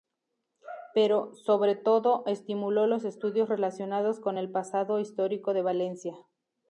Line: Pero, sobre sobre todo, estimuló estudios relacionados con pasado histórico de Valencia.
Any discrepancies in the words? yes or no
yes